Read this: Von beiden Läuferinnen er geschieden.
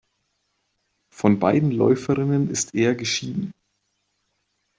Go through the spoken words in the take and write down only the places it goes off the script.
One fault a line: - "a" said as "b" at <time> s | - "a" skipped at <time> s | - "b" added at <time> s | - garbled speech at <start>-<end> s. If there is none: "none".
- "ist" added at 2.5 s